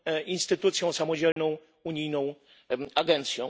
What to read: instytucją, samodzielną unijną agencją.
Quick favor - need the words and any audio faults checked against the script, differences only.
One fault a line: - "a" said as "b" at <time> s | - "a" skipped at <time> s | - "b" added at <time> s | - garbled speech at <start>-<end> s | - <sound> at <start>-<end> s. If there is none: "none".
- dropout at 1.3-1.4 s